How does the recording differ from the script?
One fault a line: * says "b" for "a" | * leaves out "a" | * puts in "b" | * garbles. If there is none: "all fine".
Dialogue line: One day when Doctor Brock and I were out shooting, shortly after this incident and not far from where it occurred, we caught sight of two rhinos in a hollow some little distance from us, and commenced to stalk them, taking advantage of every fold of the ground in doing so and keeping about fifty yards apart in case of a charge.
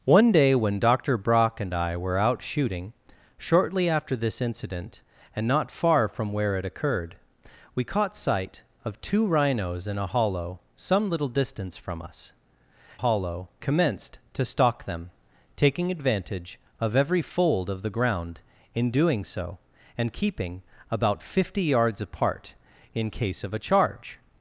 * says "hollow" for "and"